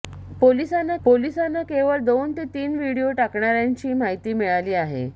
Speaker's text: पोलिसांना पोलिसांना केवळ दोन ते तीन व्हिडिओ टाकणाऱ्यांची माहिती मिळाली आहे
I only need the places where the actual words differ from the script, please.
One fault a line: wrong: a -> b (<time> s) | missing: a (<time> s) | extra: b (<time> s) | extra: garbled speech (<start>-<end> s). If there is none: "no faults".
no faults